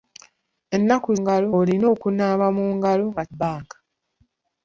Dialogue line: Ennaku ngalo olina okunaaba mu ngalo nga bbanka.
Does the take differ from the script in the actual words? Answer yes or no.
no